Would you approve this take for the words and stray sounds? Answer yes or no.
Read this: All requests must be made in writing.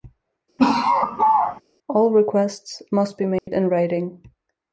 no